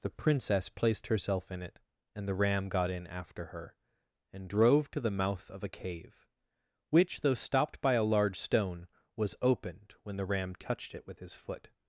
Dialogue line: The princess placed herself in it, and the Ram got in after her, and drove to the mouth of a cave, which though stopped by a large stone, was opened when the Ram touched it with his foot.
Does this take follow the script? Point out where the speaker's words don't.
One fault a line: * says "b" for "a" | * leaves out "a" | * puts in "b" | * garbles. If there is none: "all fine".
all fine